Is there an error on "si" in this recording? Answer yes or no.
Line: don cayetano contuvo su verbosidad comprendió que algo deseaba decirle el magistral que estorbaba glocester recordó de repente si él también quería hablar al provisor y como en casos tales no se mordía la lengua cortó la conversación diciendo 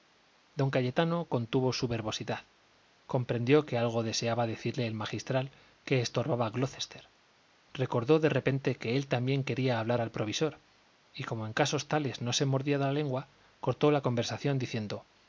yes